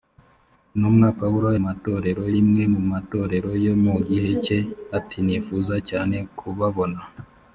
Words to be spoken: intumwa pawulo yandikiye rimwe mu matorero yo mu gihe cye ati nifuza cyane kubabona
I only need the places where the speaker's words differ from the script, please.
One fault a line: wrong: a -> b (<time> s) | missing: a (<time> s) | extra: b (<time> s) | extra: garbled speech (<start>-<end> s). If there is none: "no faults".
wrong: yandikiye -> matorero (1.6 s)